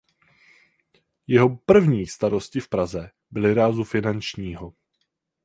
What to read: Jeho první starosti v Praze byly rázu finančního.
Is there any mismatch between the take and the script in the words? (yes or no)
no